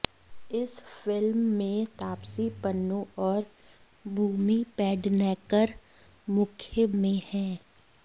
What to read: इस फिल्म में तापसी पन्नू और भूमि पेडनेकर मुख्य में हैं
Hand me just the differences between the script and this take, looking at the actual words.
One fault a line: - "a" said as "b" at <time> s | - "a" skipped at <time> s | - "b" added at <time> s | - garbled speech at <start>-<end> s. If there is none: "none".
none